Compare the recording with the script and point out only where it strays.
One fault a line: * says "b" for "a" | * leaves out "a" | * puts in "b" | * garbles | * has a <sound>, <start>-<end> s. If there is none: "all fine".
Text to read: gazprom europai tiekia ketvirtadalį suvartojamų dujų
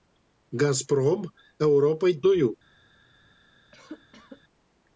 * leaves out "tiekia ketvirtadalį suvartojamų"
* has a cough, 3.7-4.4 s